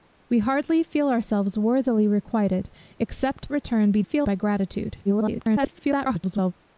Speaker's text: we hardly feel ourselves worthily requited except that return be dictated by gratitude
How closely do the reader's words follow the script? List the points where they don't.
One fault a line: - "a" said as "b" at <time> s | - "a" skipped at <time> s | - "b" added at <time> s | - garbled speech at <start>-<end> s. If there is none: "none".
- "that" skipped at 3.5 s
- "dictated" said as "feel" at 4.0 s
- garbled speech at 5.0-6.5 s